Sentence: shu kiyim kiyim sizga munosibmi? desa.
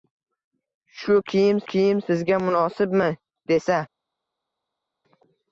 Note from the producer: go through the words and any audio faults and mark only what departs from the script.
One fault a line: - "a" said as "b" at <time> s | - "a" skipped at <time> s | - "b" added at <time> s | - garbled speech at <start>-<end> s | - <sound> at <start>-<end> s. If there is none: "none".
none